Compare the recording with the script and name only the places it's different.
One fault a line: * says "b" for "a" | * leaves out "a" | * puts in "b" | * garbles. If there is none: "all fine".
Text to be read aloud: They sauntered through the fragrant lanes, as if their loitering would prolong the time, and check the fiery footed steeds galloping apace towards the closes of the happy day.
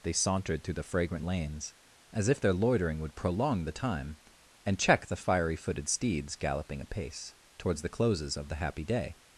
all fine